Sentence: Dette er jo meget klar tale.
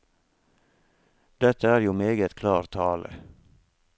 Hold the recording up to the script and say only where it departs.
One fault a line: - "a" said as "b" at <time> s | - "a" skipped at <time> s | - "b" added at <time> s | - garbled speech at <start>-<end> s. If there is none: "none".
none